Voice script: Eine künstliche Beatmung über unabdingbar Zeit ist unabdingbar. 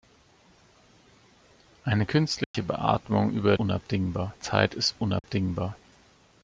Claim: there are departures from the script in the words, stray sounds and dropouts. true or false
true